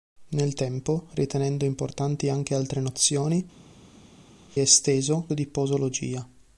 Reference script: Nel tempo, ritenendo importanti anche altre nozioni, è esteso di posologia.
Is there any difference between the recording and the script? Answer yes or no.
no